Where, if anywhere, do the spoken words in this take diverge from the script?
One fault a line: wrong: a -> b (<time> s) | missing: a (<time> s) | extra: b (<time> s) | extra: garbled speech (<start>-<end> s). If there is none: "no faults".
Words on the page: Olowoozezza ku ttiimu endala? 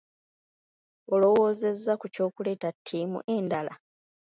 extra: ky'okuleeta (2.1 s)